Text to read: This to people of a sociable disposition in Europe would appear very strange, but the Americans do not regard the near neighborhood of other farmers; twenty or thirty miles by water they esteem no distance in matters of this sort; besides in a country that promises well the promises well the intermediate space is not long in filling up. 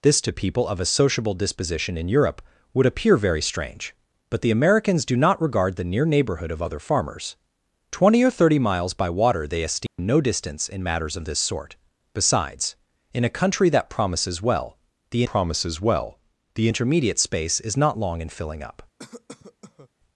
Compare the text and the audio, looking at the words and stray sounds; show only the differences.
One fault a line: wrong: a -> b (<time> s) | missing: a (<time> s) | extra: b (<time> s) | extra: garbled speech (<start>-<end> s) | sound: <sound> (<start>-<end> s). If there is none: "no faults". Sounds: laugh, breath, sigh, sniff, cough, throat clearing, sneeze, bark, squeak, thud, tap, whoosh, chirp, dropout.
sound: dropout (9.9-10.0 s)
sound: cough (19.0-19.9 s)